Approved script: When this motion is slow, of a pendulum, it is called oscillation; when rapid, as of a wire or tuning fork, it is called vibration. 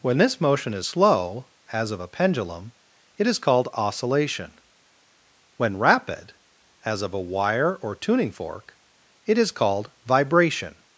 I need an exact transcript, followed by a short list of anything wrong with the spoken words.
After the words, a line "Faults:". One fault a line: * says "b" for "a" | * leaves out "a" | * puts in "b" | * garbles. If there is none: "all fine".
When this motion is slow, as of a pendulum, it is called oscillation; when rapid, as of a wire or tuning fork, it is called vibration.
Faults:
* puts in "as"